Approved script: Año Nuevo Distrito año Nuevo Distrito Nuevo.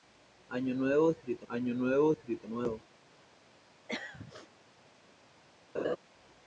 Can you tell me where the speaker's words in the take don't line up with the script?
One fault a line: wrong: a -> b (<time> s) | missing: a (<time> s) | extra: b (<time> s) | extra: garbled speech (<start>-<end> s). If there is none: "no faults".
no faults